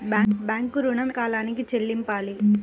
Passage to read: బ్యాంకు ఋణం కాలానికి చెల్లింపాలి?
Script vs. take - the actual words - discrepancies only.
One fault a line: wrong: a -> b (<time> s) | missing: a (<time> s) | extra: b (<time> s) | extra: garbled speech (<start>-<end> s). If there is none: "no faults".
no faults